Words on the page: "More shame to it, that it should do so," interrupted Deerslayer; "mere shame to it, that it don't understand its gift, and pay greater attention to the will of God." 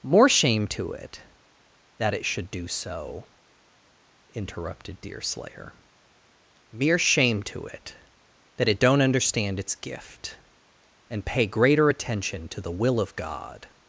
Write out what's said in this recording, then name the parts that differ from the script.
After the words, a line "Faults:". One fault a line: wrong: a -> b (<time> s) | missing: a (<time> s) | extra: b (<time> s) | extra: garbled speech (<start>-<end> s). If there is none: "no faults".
"More shame to it, that it should do so," interrupted Deerslayer; "mere shame to it, that it don't understand its gift, and pay greater attention to the will of God."
Faults:
no faults